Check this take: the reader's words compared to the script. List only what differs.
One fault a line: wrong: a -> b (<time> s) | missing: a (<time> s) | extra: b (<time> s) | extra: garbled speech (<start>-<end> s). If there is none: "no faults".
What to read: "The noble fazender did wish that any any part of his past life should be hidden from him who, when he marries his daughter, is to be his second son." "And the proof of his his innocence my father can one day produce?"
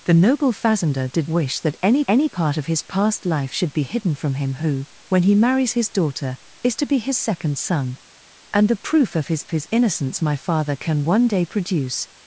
no faults